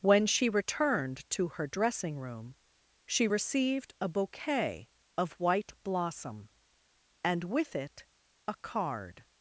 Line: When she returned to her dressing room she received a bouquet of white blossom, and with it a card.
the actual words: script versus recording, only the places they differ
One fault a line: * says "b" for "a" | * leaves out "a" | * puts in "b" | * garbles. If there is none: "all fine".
all fine